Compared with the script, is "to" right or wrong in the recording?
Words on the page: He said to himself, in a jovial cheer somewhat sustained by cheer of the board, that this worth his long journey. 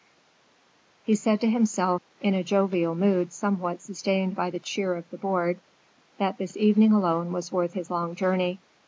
right